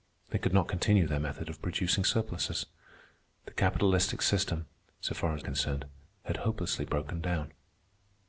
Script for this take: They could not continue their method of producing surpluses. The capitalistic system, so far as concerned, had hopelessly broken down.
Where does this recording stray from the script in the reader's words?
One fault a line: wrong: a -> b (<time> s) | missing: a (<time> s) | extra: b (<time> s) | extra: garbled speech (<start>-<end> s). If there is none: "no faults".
no faults